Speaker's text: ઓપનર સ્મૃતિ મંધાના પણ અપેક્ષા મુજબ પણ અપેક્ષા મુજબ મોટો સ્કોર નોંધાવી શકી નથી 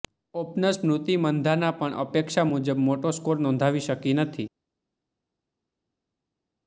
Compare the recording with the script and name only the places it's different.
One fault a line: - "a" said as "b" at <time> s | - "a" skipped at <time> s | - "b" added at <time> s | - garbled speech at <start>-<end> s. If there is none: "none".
- "પણ અપેક્ષા મુજબ" skipped at 2.8 s